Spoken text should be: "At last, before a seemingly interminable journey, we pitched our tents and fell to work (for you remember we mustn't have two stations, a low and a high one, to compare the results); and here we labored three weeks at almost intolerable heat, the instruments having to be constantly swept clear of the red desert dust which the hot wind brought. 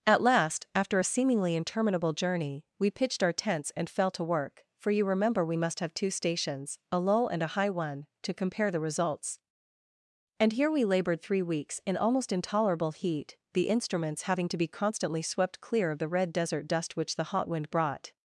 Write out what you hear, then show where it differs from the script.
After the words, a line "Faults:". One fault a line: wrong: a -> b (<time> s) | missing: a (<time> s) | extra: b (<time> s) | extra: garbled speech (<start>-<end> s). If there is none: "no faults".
"At last, after a seemingly interminable journey, we pitched our tents and fell to work (for you remember we must have two stations, a low and a high one, to compare the results); and here we labored three weeks in almost intolerable heat, the instruments having to be constantly swept clear of the red desert dust which the hot wind brought.
Faults:
wrong: before -> after (0.7 s)
wrong: mustn't -> must (5.6 s)
wrong: at -> in (11.8 s)